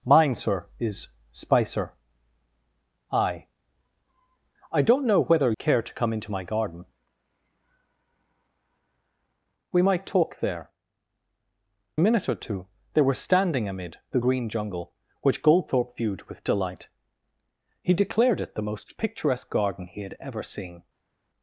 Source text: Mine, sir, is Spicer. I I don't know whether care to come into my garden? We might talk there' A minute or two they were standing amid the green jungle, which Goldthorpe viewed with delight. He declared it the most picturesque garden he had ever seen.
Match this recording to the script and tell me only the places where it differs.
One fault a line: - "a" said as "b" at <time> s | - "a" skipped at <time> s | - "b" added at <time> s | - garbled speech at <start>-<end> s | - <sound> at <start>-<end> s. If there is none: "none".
none